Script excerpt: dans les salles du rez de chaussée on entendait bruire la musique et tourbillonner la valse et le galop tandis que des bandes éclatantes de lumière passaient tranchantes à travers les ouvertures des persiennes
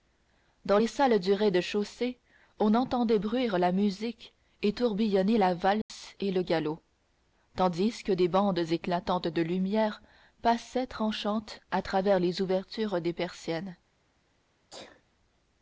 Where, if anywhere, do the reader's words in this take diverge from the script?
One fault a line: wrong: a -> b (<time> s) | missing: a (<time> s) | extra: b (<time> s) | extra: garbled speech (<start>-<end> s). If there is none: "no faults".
no faults